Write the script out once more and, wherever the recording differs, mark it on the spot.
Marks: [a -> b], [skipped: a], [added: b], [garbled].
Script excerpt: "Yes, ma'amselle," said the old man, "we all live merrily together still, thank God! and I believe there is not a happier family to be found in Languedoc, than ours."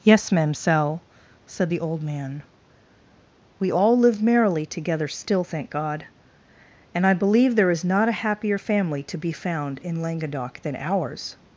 "Yes, ma'amselle," said the old man, "we all live merrily together still, thank God! and I believe there is not a happier family to be found in Languedoc, than ours."